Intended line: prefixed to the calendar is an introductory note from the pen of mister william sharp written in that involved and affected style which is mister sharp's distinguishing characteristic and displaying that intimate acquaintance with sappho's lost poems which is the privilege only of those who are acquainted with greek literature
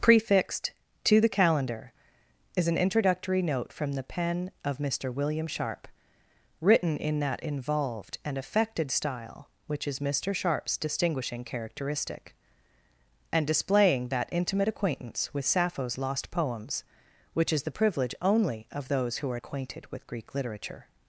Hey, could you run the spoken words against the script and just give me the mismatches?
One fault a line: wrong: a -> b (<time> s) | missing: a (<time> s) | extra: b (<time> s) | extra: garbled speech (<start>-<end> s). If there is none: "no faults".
no faults